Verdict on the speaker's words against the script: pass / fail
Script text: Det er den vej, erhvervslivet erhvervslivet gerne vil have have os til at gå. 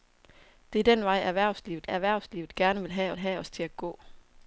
pass